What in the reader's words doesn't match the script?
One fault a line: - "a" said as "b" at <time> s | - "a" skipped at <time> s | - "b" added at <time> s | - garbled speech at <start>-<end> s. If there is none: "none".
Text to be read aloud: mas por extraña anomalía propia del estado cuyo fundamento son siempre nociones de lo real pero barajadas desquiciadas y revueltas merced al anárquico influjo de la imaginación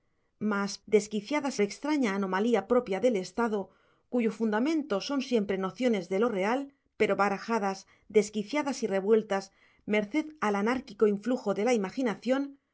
- "por" said as "desquiciadas" at 0.9 s